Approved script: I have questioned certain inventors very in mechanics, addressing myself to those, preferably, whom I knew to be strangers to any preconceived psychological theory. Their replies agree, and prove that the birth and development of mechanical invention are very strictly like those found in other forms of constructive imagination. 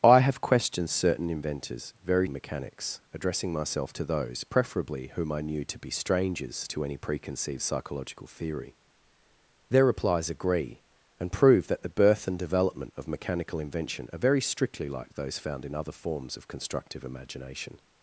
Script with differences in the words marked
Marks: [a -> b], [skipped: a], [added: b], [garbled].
I have questioned certain inventors very in mechanics, addressing myself to those, preferably, whom I knew to be strangers to any preconceived psychological theory. Their replies agree, and prove that the birth and development of mechanical invention are very strictly like those found in other forms of constructive imagination.